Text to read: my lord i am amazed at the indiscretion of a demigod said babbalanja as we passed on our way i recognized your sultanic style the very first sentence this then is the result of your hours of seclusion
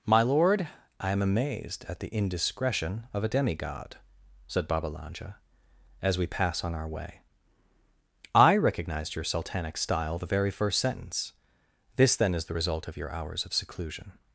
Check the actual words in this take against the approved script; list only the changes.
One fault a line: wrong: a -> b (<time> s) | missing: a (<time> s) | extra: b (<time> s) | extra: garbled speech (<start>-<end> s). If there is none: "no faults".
wrong: passed -> pass (6.3 s)